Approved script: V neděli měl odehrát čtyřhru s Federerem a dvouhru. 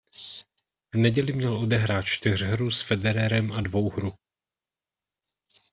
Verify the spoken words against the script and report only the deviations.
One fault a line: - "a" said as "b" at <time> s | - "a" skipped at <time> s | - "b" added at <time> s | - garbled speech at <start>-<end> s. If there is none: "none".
none